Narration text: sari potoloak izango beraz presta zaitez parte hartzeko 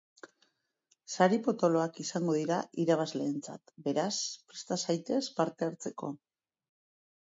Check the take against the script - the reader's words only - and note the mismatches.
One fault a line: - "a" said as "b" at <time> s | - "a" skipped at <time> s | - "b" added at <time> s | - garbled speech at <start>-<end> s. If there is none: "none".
- "dira irabazleentzat" added at 2.4 s